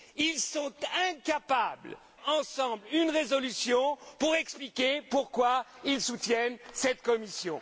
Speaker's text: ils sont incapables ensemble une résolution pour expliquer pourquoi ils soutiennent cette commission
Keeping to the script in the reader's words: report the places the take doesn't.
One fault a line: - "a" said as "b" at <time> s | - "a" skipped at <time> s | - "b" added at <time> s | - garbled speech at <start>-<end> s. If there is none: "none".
none